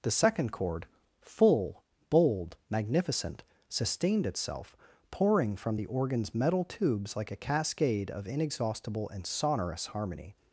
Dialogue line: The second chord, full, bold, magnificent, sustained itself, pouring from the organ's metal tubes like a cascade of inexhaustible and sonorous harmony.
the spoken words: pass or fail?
pass